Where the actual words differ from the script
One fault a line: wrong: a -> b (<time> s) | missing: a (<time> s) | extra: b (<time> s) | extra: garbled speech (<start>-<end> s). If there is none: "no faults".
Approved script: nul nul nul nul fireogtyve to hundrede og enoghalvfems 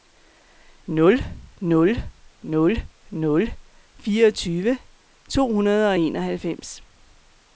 no faults